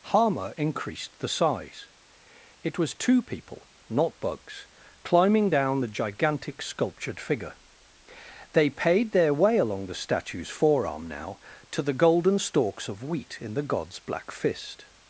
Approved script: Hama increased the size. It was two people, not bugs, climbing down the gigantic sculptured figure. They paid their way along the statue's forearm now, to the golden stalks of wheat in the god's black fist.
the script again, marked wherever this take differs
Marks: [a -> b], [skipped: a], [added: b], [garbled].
Hama increased the size. It was two people, not bugs, climbing down the gigantic sculptured figure. They paid their way along the statue's forearm now, to the golden stalks of wheat in the god's black fist.